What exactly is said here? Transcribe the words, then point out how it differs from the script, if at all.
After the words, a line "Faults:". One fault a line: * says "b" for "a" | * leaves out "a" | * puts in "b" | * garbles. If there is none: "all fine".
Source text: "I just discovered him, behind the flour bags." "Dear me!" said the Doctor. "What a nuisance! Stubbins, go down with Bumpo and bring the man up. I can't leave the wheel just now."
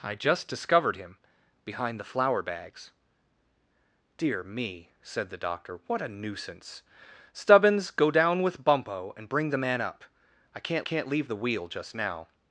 "I just discovered him, behind the flour bags." "Dear me!" said the Doctor. "What a nuisance! Stubbins, go down with Bumpo and bring the man up. I can't can't leave the wheel just now."
Faults:
* puts in "can't"